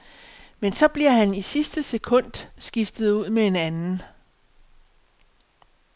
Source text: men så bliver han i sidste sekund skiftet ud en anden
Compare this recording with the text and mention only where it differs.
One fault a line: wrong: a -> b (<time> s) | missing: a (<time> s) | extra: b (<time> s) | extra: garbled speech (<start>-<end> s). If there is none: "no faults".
extra: med (3.3 s)